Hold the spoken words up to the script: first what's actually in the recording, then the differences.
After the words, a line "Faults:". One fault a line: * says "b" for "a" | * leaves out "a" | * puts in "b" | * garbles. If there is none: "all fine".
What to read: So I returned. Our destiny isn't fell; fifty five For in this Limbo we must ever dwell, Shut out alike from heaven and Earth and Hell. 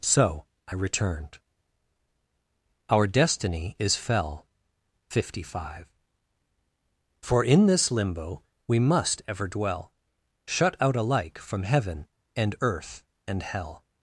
So I returned. Our destiny is fell; fifty five For in this Limbo we must ever dwell, Shut out alike from heaven and Earth and Hell.
Faults:
* says "is" for "isn't"